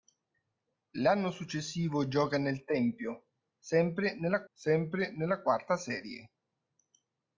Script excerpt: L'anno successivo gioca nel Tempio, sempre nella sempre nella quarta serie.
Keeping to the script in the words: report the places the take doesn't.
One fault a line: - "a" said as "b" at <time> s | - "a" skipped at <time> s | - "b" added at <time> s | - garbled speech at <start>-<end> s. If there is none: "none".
none